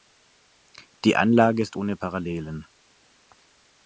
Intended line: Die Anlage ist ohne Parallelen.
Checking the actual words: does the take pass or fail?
pass